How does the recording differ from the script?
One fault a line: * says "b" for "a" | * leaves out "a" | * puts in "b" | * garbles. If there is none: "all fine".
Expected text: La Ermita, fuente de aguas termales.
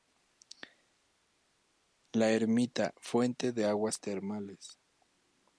all fine